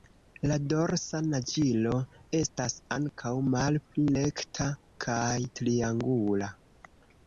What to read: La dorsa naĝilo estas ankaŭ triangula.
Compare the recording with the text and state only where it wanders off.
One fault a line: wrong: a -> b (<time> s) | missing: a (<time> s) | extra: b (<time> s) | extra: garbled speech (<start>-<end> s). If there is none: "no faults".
extra: malpli rekta kaj (3.5 s)